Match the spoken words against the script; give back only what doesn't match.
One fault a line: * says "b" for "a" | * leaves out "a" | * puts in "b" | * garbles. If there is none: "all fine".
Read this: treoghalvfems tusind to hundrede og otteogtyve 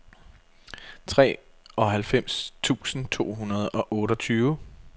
all fine